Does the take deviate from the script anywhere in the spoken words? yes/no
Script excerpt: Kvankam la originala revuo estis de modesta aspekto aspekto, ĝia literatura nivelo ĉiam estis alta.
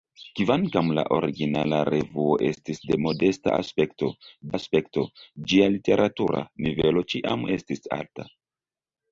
no